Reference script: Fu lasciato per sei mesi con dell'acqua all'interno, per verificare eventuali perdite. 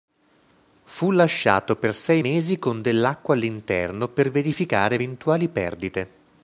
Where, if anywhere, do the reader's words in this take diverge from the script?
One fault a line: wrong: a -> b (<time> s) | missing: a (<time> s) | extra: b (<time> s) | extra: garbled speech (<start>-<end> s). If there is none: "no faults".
no faults